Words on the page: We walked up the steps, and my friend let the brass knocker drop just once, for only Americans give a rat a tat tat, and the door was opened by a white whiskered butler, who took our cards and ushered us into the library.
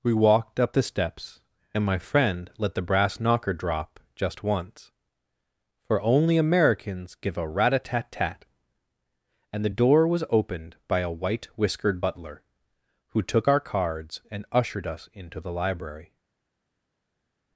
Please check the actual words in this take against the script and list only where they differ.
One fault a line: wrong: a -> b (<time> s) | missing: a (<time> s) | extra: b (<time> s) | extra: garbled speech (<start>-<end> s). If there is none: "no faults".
no faults